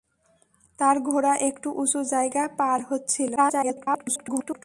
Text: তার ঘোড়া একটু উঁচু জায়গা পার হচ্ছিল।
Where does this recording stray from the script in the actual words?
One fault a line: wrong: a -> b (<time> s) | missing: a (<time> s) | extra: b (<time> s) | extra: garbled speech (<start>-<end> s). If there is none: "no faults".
extra: garbled speech (3.4-4.6 s)